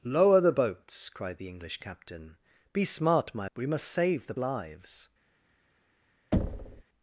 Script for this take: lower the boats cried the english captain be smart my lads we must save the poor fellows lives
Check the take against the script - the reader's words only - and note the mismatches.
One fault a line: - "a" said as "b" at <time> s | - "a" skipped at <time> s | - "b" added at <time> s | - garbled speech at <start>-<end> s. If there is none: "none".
- "lads" skipped at 3.5 s
- "poor fellows" skipped at 4.3 s